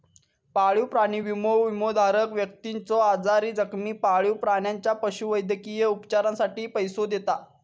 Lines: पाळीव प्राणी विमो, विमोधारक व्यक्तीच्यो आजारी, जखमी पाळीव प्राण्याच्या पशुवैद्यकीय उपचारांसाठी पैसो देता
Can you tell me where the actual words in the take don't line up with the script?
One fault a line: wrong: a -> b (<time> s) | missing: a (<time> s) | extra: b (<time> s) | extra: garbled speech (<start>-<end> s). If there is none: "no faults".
no faults